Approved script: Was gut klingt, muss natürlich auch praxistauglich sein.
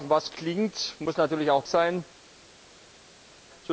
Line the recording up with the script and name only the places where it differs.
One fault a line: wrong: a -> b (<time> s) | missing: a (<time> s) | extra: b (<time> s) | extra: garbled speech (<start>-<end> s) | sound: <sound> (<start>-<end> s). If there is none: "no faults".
missing: gut (0.3 s)
missing: praxistauglich (1.7 s)